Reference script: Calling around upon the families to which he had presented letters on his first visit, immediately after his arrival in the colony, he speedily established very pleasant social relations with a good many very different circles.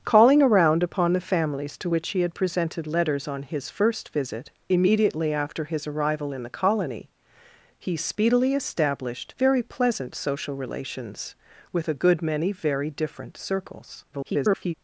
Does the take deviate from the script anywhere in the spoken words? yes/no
yes